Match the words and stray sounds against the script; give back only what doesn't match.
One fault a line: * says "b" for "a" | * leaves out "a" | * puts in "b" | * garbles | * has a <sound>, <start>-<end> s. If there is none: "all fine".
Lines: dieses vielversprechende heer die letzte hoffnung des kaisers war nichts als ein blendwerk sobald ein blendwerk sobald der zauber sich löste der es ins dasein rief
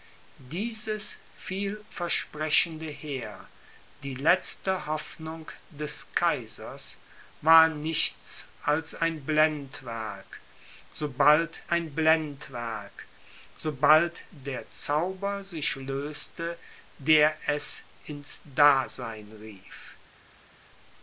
all fine